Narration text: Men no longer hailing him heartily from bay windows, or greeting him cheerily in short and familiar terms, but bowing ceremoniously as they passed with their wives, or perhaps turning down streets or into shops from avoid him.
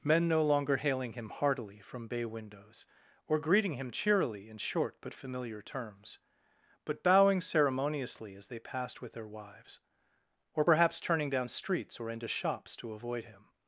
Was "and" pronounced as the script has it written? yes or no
no